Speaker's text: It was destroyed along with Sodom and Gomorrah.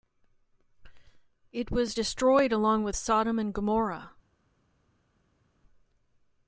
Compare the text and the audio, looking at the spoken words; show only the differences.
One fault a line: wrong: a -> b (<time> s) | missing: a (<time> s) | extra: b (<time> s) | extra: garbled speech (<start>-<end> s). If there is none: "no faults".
no faults